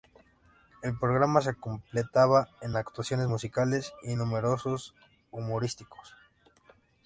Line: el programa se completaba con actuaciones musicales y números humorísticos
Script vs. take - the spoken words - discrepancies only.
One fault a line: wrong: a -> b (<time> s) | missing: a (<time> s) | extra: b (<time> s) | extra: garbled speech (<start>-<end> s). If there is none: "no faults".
no faults